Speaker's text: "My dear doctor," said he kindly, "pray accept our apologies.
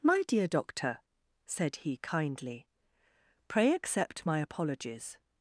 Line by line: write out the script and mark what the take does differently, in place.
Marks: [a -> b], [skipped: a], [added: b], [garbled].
"My dear doctor," said he kindly, "pray accept [our -> my] apologies.